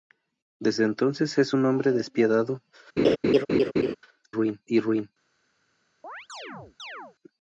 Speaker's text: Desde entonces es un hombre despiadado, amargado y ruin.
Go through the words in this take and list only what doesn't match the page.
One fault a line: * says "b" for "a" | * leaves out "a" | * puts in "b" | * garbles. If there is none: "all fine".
* says "ruin" for "amargado"